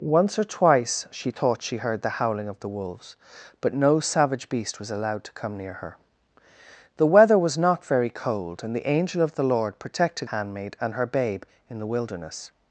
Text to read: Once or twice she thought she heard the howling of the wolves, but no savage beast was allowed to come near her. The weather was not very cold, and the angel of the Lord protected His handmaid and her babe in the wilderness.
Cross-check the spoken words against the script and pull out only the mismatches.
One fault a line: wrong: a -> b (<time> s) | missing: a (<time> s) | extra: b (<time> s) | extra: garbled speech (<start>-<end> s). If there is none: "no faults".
missing: His (10.3 s)